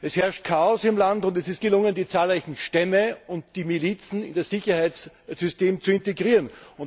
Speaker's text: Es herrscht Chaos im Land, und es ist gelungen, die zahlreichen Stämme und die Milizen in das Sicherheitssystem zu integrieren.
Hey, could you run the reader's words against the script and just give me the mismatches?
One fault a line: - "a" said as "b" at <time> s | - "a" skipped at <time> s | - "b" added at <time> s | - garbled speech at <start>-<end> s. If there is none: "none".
none